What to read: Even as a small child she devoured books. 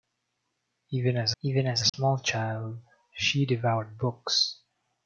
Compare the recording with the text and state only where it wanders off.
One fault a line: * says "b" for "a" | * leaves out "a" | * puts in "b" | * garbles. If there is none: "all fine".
* puts in "even as"